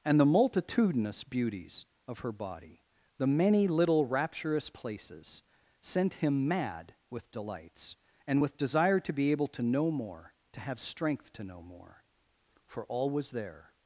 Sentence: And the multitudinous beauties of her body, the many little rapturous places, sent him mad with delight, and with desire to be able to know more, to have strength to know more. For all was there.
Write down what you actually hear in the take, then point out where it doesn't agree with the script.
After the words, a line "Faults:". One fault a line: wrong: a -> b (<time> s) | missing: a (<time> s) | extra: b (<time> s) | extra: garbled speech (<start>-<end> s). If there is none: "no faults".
And the multitudinous beauties of her body, the many little rapturous places, sent him mad with delights, and with desire to be able to know more, to have strength to know more. For all was there.
Faults:
wrong: delight -> delights (7.3 s)